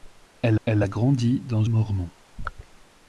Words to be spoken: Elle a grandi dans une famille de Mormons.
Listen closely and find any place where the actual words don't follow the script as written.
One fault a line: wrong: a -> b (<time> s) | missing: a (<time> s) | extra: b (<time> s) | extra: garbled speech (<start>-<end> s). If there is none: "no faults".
extra: elle (0.6 s)
missing: une famille de (1.6 s)